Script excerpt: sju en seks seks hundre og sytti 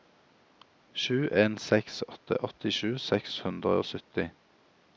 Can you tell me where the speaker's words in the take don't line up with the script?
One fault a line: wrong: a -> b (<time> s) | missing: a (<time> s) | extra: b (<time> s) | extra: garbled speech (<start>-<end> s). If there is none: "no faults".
extra: åtte åttisju (2.1 s)